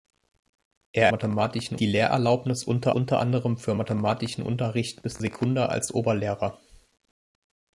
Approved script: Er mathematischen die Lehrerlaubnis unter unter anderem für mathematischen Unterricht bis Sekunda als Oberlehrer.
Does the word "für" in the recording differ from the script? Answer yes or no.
no